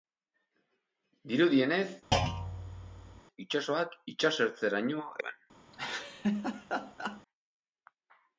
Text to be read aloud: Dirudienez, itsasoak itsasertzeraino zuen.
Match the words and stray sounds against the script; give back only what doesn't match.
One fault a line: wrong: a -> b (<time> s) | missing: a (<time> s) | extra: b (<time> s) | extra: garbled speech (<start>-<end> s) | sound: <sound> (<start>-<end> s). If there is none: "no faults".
sound: thud (2.1-3.2 s)
sound: laugh (5.7-7.2 s)